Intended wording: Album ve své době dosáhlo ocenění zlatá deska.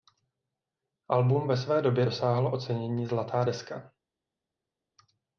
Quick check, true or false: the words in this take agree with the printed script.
true